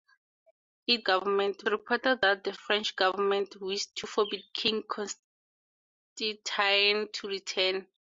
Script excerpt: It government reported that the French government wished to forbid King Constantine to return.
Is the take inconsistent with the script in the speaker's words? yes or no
no